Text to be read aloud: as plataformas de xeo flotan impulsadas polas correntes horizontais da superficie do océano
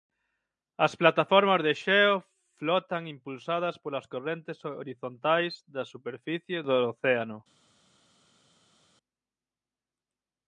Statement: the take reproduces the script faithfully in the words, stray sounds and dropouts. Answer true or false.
true